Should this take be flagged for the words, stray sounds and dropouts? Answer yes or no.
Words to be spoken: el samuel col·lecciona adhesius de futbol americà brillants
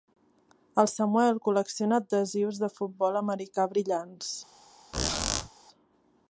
yes